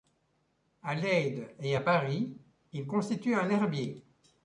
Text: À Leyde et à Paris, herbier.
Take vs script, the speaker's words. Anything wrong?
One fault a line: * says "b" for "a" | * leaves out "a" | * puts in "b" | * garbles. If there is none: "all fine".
* puts in "il constitue un"